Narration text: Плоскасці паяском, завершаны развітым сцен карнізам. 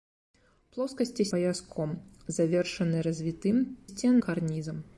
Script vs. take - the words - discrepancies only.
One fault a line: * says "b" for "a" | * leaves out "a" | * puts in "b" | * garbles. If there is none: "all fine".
all fine